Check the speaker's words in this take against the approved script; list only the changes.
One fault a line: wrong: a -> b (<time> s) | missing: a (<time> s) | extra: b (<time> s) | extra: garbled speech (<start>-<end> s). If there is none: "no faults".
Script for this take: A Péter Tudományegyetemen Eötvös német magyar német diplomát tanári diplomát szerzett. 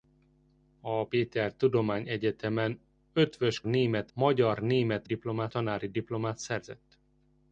no faults